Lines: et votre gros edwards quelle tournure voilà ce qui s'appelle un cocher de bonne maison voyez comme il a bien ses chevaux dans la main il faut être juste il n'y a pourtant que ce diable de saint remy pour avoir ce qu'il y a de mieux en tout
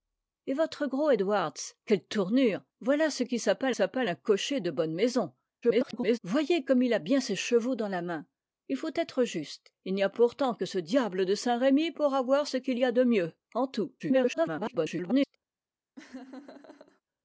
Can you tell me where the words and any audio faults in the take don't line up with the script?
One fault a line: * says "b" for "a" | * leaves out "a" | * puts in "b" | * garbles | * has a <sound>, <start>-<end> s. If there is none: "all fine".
* puts in "s'appelle"
* garbles
* garbles
* has a laugh, 16.0-17.0 s